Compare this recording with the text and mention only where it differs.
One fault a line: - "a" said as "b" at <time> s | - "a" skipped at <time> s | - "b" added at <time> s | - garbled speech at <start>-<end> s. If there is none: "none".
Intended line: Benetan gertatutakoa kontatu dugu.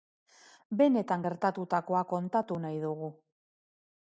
- "nahi" added at 2.7 s